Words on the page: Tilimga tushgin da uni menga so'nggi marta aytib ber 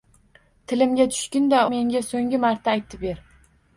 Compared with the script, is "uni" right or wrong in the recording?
wrong